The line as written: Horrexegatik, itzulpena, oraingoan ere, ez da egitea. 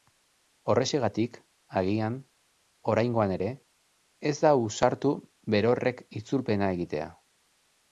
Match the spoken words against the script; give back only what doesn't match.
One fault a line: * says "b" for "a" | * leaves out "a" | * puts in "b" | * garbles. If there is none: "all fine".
* says "agian" for "itzulpena"
* puts in "ausartu berorrek itzulpena"